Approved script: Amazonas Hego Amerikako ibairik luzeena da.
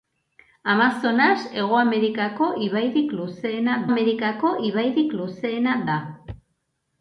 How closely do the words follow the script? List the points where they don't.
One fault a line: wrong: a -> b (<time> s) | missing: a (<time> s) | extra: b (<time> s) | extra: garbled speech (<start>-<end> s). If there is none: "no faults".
extra: Amerikako ibairik luzeena (3.9 s)